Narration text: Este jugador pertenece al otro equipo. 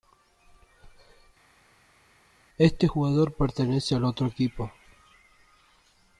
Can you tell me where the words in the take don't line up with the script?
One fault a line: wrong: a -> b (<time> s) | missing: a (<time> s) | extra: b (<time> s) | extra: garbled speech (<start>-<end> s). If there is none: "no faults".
no faults